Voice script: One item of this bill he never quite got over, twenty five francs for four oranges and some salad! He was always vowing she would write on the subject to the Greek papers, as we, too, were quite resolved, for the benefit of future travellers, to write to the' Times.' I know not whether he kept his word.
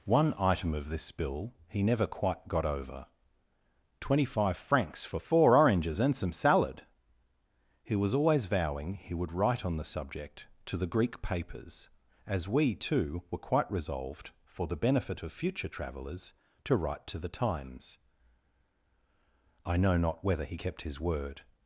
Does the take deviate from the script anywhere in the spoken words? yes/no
yes